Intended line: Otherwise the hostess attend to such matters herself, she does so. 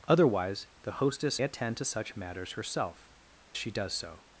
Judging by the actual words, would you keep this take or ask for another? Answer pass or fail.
pass